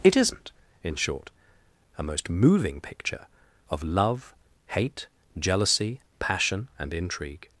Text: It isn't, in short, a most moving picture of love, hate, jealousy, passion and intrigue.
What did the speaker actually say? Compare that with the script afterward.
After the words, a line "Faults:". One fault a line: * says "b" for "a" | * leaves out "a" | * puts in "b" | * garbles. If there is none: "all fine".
It isn't, in short, a most moving picture of love, hate, jealousy, passion and intrigue.
Faults:
all fine